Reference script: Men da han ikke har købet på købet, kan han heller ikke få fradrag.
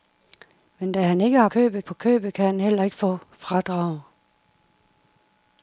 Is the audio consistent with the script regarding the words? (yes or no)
yes